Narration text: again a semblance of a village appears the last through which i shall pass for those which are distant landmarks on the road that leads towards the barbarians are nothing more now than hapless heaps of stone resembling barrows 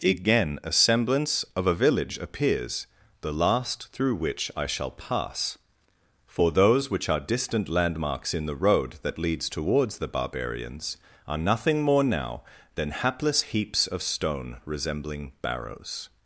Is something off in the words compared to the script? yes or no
yes